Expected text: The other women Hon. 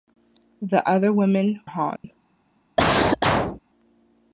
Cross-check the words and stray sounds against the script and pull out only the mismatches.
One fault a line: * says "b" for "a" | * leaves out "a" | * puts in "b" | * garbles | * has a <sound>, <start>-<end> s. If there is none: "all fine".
* has a dropout, 2.0-2.0 s
* has a cough, 2.8-3.6 s